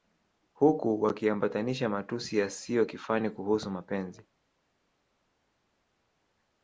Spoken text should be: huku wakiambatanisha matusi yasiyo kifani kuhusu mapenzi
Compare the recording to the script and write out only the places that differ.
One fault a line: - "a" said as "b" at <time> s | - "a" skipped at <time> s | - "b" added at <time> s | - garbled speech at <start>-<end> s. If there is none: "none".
none